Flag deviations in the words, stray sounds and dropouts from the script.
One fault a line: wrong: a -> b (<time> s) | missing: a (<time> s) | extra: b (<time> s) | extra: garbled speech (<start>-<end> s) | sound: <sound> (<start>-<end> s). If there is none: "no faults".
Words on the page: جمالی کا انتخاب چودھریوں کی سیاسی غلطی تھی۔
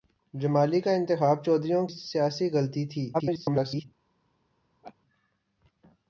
missing: کی (1.9 s)
extra: garbled speech (3.1-3.8 s)
sound: laugh (4.8-5.0 s)